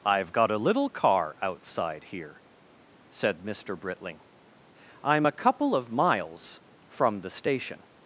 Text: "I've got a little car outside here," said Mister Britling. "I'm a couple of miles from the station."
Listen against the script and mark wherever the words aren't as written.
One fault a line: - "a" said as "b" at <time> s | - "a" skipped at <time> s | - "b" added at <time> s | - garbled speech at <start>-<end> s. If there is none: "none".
none